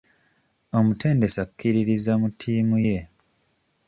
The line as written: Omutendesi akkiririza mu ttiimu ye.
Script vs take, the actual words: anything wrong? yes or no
no